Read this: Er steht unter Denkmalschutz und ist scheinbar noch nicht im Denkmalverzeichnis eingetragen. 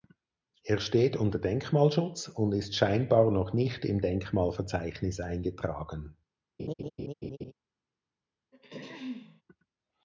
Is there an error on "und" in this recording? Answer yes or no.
no